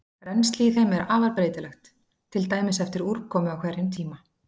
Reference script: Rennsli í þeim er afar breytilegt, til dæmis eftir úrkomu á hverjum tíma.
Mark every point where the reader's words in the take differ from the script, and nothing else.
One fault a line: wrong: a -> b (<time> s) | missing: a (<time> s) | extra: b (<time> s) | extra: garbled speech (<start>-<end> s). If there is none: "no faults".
no faults